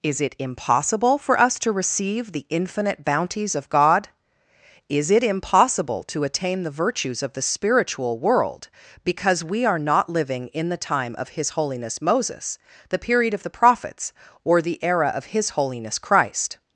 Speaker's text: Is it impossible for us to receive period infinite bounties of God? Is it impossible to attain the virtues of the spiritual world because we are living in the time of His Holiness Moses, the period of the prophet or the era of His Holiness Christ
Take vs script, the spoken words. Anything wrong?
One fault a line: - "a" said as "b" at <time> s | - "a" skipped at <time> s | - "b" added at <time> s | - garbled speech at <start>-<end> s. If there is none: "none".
- "period" said as "the" at 2.3 s
- "not" added at 9.8 s
- "prophet" said as "prophets" at 13.5 s